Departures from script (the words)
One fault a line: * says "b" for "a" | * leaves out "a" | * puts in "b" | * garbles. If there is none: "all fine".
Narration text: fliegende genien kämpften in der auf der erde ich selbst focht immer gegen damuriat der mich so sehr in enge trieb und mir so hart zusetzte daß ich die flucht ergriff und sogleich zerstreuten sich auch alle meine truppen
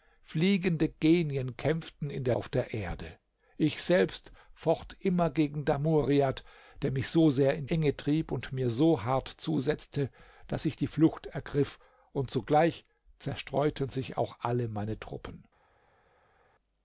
all fine